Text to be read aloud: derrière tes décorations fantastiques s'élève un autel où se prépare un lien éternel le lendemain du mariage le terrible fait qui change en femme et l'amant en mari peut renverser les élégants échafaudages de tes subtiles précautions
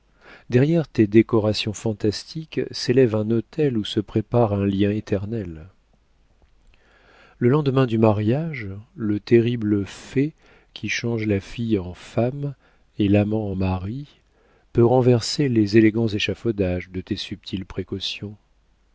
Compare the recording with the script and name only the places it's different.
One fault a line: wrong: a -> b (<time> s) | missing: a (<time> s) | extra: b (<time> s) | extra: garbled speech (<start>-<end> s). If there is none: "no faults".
extra: la fille (11.3 s)